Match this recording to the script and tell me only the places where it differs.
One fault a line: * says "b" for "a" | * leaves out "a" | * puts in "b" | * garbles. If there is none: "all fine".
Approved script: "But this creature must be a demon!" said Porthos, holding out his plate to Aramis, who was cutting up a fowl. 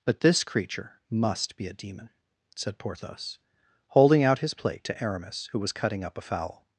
all fine